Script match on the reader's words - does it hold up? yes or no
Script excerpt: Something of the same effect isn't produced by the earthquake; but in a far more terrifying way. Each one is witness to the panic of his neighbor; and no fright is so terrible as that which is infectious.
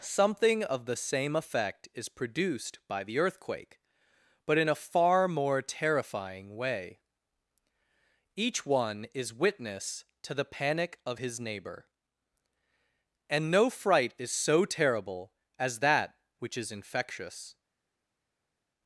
no